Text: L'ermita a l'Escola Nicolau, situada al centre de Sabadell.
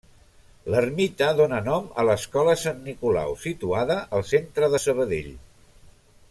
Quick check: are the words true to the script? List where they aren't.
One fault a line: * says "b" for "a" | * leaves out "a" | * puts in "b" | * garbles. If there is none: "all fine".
* puts in "dóna nom"
* puts in "Sant"